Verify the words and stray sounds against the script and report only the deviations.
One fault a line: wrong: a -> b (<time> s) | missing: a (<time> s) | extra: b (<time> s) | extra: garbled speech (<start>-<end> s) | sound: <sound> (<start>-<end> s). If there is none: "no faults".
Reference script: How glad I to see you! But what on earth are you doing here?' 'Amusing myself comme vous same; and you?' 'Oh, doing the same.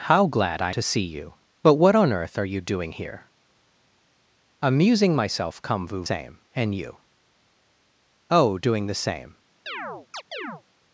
sound: chirp (9.7-10.6 s)